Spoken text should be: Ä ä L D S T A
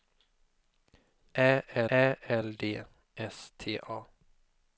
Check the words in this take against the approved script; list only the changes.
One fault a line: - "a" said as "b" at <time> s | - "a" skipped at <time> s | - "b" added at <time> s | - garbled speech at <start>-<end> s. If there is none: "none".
none